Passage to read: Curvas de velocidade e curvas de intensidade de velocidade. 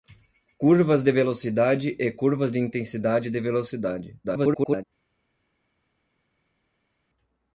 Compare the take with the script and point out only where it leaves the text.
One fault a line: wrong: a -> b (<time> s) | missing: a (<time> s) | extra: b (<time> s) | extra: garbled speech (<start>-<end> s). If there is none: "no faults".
extra: garbled speech (4.2-4.8 s)